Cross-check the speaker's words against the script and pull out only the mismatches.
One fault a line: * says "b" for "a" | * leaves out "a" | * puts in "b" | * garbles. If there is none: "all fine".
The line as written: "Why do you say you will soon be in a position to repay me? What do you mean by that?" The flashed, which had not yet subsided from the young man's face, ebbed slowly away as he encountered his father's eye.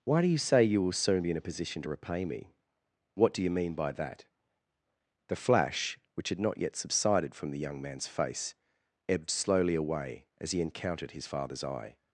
* says "flash" for "flashed"